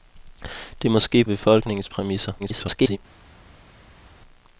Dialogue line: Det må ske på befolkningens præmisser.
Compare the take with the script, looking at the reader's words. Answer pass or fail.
fail